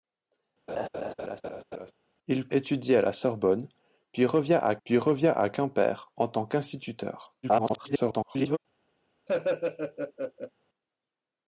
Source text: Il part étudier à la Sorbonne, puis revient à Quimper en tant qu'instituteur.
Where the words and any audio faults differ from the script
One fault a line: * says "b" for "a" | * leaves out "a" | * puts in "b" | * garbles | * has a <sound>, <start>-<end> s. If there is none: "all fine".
* has a laugh, 0.7-1.9 s
* leaves out "part"
* puts in "puis revient à"
* garbles
* has a laugh, 9.3-10.5 s